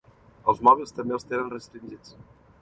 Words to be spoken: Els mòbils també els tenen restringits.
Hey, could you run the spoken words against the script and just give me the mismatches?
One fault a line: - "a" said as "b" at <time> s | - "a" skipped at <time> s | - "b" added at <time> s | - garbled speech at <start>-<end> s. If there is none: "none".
none